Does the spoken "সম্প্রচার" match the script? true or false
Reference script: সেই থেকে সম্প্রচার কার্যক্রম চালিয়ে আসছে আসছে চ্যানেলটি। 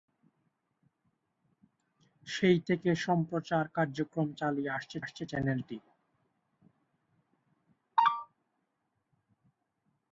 true